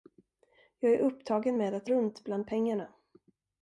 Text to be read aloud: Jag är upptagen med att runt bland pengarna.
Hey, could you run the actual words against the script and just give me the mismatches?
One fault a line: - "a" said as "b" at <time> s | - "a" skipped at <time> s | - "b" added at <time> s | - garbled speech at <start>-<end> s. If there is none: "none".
none